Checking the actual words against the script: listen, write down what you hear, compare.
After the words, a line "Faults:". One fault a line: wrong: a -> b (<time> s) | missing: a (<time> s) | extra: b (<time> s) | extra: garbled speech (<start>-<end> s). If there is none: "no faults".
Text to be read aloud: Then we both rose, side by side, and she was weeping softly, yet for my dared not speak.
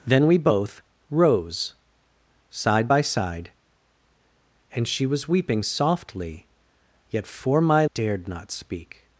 Then we both rose, side by side, and she was weeping softly, yet for my dared not speak.
Faults:
no faults